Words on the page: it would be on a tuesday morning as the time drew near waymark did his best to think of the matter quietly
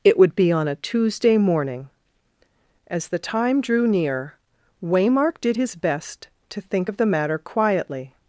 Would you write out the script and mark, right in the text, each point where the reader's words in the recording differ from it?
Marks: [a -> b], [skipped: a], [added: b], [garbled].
it would be on a tuesday morning as the time drew near waymark did his best to think of the matter quietly